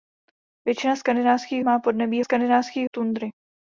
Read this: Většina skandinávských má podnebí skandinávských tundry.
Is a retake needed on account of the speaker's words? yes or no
no